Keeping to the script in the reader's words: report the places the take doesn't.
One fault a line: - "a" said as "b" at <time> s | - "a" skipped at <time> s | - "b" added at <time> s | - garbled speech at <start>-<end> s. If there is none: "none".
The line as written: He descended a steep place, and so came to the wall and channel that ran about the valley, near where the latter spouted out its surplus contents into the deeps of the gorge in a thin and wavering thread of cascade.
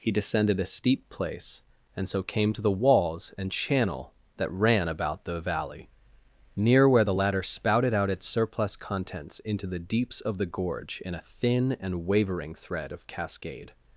- "wall" said as "walls" at 2.7 s